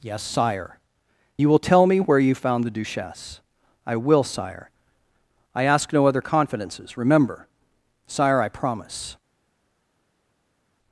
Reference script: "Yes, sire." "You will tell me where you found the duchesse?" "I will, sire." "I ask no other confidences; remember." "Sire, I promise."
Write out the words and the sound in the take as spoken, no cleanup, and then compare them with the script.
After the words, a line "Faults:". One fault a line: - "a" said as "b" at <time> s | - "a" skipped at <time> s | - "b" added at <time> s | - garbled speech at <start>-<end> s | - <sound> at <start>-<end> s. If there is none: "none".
"Yes, sire." "You will tell me where you found the duchesse?" "I will, sire." "I ask no other confidences; remember." "Sire, I promise."
Faults:
none